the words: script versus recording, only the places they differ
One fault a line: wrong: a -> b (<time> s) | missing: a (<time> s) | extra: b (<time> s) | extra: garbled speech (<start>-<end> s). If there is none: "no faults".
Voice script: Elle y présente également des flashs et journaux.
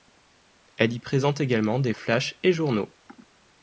no faults